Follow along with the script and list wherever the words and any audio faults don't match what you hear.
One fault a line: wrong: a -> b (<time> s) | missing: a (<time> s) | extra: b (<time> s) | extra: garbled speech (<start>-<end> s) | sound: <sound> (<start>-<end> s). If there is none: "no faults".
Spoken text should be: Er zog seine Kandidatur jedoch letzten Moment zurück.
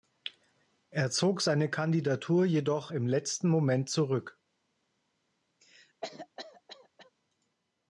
extra: im (2.9 s)
sound: cough (5.6-7.1 s)